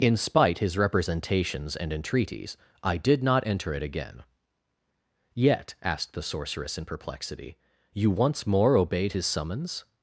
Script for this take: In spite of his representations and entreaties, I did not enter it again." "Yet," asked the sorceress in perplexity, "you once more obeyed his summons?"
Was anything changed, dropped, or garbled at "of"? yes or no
yes